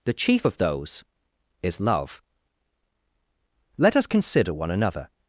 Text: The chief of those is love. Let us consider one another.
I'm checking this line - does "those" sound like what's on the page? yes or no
yes